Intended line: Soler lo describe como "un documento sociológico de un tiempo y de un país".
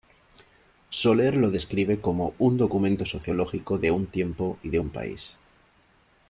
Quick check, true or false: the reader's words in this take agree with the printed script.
true